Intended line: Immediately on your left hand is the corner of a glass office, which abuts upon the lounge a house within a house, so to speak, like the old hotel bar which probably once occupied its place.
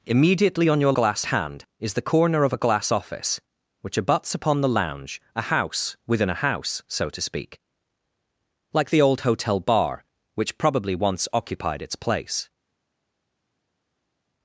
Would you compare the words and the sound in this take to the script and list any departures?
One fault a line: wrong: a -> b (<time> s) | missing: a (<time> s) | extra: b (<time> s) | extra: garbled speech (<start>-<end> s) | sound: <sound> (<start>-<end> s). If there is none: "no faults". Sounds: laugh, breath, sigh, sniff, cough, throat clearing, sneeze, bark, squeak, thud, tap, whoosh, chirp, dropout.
wrong: left -> glass (0.9 s)